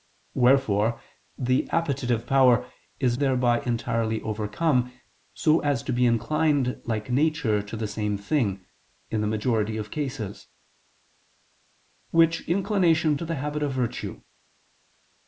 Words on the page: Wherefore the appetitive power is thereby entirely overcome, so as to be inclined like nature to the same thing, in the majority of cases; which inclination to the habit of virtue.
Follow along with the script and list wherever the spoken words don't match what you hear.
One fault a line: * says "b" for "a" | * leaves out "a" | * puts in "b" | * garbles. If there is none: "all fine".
all fine